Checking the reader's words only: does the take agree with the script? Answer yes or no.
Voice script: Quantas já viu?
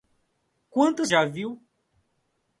yes